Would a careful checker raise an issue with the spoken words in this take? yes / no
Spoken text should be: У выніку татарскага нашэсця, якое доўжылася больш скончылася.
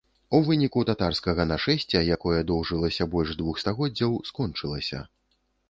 yes